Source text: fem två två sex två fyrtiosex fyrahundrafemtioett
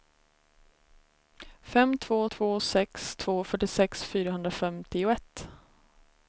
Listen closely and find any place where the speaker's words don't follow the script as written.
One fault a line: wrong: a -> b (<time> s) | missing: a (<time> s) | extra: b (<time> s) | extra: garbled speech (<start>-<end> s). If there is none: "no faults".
no faults